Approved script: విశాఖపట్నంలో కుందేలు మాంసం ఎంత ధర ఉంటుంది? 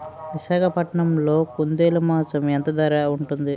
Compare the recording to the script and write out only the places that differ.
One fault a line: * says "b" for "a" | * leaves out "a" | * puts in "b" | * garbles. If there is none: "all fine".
all fine